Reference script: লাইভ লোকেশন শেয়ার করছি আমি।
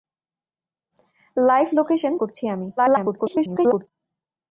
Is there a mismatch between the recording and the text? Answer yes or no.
yes